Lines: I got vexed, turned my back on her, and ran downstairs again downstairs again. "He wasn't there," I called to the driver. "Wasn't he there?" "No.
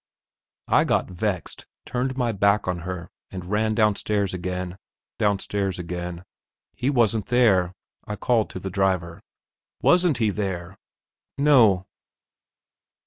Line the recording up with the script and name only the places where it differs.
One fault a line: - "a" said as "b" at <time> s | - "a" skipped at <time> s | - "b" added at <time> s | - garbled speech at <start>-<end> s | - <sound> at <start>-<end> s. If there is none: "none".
none